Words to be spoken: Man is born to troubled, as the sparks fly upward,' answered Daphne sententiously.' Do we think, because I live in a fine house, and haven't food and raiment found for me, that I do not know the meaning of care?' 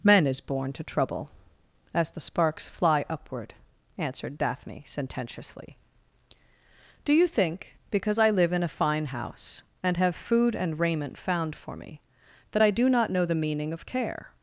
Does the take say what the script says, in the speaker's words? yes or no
no